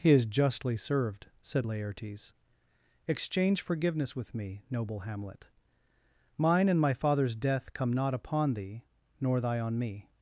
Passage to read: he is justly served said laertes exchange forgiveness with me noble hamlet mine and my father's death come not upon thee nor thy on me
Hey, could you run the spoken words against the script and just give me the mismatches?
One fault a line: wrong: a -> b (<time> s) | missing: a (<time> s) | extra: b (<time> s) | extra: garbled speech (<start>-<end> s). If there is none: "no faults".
no faults